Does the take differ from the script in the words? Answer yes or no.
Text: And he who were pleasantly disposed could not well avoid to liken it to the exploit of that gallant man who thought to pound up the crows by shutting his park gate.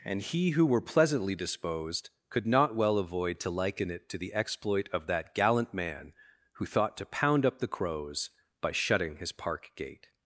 no